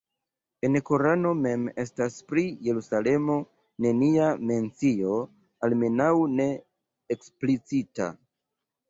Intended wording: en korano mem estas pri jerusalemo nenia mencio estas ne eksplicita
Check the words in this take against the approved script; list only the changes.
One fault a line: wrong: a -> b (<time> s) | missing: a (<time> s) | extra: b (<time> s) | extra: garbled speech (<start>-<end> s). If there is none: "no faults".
wrong: estas -> almenaŭ (5.7 s)